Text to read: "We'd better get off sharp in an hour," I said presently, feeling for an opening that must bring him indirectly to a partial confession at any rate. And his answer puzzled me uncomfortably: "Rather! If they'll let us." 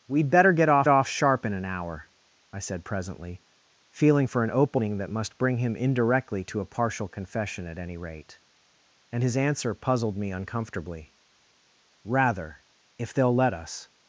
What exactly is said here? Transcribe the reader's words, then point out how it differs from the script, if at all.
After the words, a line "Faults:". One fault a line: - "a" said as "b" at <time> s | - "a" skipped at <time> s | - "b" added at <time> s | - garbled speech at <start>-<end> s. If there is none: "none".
"We'd better get off off sharp in an hour," I said presently, feeling for an opening that must bring him indirectly to a partial confession at any rate. And his answer puzzled me uncomfortably: "Rather! If they'll let us."
Faults:
- "off" added at 0.9 s